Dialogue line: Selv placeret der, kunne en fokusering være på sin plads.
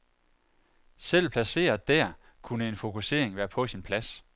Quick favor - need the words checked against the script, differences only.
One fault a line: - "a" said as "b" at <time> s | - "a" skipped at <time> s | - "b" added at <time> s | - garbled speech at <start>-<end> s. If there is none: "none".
none